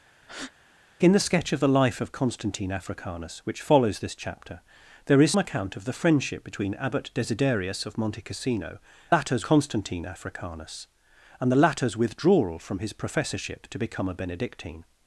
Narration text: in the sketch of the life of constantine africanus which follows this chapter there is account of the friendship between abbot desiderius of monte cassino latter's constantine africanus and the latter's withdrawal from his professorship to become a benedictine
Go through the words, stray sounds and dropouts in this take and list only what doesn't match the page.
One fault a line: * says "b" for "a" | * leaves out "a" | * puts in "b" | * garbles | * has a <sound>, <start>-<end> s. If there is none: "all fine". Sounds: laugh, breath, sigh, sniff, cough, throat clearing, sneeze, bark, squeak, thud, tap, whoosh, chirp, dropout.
* has a breath, 0.2-0.5 s